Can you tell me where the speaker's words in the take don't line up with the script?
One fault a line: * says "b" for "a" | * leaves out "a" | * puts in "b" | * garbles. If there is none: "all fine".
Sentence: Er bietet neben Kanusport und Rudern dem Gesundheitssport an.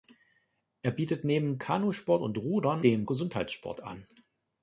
all fine